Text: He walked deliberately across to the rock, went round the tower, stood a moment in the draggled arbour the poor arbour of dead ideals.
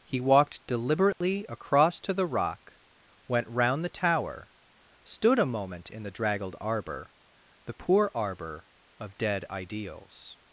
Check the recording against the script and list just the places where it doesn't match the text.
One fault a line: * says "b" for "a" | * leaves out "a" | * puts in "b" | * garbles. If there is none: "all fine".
all fine